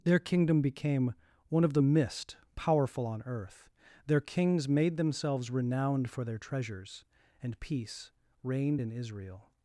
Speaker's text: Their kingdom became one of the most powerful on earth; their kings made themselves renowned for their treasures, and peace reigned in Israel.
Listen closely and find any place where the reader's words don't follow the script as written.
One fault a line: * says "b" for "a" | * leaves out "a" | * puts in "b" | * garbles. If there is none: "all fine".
* says "mist" for "most"